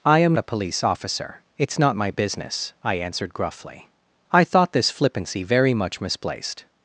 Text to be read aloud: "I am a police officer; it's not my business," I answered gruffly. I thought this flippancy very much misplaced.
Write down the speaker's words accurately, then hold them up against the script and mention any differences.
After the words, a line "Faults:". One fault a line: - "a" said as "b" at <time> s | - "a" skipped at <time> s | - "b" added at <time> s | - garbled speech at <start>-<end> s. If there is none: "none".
"I am a police officer; it's not my business," I answered gruffly. I thought this flippancy very much misplaced.
Faults:
none